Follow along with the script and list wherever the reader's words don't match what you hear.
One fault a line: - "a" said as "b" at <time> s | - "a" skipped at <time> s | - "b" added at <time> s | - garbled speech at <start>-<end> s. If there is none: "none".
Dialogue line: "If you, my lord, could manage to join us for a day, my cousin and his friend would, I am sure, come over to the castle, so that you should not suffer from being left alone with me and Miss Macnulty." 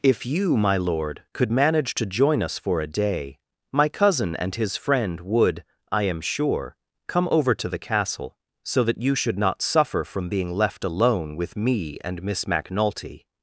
none